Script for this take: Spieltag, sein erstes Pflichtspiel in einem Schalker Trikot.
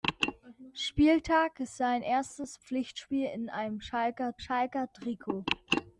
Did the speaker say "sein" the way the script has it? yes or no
yes